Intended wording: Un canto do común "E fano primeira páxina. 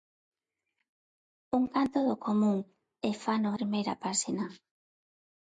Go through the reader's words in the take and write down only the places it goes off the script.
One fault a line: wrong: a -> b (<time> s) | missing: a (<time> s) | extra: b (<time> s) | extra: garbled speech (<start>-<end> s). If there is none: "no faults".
no faults